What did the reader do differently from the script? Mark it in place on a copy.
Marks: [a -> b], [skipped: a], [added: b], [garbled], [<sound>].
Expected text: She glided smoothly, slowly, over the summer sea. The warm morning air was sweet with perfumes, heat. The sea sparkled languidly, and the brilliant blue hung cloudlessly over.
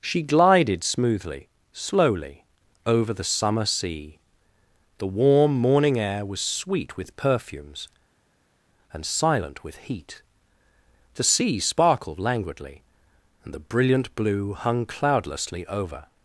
She glided smoothly, slowly, over the summer sea. The warm morning air was sweet with perfumes, [added: and silent with] heat. The sea sparkled languidly, and the brilliant blue hung cloudlessly over.